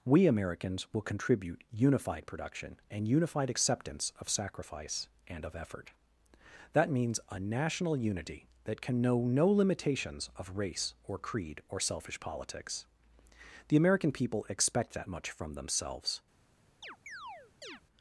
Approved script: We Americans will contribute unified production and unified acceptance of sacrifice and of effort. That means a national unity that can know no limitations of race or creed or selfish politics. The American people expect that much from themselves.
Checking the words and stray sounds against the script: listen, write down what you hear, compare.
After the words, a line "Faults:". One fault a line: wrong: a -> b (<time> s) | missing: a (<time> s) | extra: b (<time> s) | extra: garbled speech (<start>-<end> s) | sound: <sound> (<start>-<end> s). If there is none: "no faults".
We Americans will contribute unified production and unified acceptance of sacrifice and of effort. That means a national unity that can know no limitations of race or creed or selfish politics. The American people expect that much from themselves.
Faults:
sound: chirp (16.8-17.8 s)